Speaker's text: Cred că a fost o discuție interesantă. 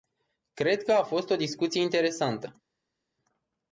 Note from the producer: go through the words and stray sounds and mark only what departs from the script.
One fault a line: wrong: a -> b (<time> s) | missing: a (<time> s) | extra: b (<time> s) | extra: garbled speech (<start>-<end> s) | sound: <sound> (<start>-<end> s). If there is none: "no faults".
no faults